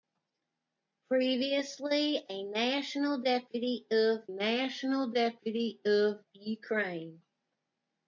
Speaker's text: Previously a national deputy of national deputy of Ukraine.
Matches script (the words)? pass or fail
pass